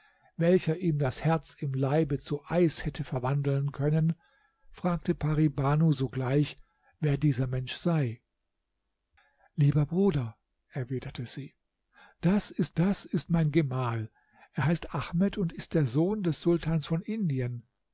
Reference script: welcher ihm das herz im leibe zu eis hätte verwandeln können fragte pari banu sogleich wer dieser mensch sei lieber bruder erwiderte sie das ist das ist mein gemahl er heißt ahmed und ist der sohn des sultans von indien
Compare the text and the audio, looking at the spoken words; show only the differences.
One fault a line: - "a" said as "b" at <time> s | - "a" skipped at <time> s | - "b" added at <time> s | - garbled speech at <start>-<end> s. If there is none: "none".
none